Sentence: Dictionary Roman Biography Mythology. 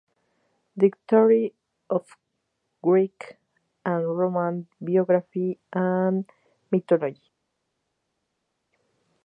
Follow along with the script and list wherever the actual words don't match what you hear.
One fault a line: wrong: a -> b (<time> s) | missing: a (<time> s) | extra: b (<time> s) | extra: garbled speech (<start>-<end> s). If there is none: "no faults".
extra: of Greek and (1.9 s)
extra: and (5.7 s)